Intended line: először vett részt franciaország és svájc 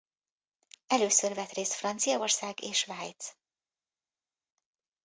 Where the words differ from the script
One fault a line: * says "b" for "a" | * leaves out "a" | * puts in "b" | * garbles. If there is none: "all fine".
all fine